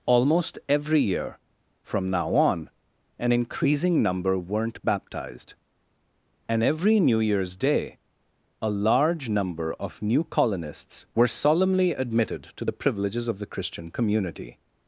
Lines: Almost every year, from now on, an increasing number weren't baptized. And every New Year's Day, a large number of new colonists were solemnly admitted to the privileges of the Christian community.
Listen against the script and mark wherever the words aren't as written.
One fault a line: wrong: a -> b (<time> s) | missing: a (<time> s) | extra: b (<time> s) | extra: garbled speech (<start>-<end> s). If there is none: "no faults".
no faults